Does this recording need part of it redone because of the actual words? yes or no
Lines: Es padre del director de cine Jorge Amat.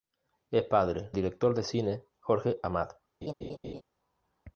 yes